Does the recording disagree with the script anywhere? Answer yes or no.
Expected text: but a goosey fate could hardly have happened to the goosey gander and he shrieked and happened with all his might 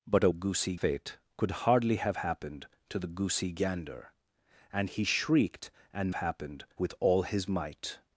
no